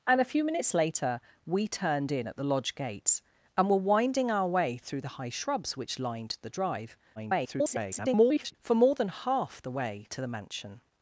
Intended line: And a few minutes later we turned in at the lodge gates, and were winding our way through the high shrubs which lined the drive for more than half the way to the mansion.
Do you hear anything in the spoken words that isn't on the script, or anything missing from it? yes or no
yes